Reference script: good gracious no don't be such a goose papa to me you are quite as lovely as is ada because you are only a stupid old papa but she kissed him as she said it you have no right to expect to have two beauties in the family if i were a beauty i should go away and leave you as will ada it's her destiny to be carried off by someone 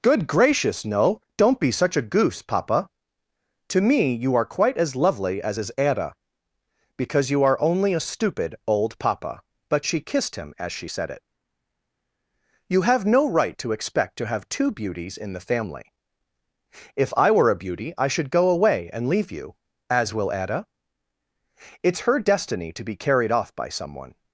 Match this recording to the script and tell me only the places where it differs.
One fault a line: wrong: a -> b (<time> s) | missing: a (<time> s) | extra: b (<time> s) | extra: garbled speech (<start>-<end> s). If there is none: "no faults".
no faults